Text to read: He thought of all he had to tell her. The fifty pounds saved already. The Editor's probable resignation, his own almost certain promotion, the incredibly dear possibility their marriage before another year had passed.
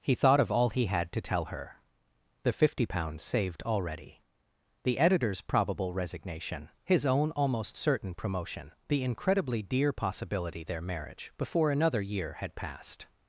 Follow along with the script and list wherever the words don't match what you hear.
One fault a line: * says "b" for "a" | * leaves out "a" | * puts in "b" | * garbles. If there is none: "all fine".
all fine